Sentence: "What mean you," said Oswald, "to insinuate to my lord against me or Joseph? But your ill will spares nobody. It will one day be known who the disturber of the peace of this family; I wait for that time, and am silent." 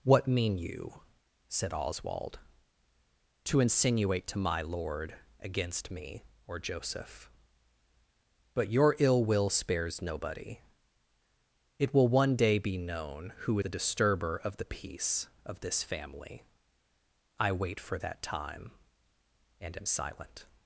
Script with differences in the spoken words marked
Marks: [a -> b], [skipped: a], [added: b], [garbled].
"What mean you," said Oswald, "to insinuate to my lord against me or Joseph? But your ill will spares nobody. It will one day be known who the disturber of the peace of this family; I wait for that time, and am silent."